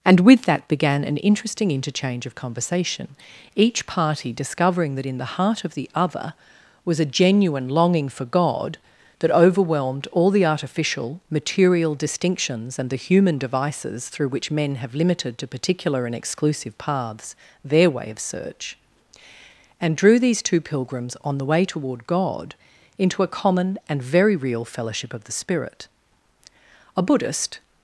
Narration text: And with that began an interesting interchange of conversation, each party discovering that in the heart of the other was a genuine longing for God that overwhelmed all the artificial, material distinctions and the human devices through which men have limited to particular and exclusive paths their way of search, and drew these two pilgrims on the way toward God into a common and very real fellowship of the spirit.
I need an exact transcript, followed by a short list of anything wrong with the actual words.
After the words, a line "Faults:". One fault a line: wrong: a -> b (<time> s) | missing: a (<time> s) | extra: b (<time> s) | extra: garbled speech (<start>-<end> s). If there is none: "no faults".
And with that began an interesting interchange of conversation, each party discovering that in the heart of the other was a genuine longing for God that overwhelmed all the artificial, material distinctions and the human devices through which men have limited to particular and exclusive paths their way of search, and drew these two pilgrims on the way toward God into a common and very real fellowship of the spirit. A Buddhist
Faults:
extra: A Buddhist (27.0 s)